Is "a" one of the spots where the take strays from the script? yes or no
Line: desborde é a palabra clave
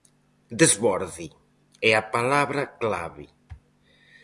no